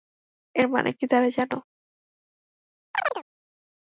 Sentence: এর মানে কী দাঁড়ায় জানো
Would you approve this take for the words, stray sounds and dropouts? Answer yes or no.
no